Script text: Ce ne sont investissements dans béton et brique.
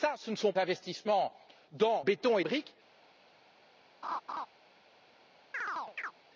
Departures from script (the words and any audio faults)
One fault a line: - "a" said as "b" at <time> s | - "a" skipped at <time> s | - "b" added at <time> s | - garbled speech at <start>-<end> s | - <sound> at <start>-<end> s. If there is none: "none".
- laugh at 4.0-4.5 s
- chirp at 5.5-6.1 s